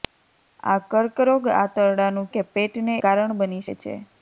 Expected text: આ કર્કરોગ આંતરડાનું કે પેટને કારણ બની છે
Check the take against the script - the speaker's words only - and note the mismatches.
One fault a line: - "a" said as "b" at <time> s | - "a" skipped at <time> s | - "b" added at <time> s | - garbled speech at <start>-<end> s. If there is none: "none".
none